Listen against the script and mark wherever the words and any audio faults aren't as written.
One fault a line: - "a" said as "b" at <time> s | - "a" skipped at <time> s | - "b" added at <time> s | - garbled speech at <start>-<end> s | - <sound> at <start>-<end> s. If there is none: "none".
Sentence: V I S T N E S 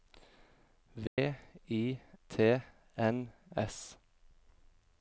- dropout at 1.1-1.2 s
- "S" skipped at 2.0 s
- "E" skipped at 3.3 s